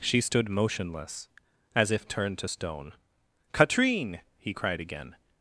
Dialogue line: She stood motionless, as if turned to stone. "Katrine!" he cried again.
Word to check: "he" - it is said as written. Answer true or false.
true